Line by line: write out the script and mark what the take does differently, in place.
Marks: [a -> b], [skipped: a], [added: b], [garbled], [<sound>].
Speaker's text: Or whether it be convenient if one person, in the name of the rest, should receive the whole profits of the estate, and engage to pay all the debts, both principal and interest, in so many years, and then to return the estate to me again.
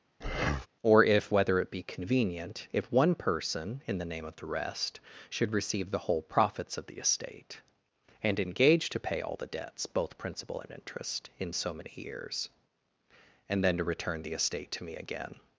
[breath] Or [added: if] whether it be convenient if one person, in the name of the rest, should receive the whole profits of the estate, and engage to pay all the debts, both principal and interest, in so many years, and then to return the estate to me again.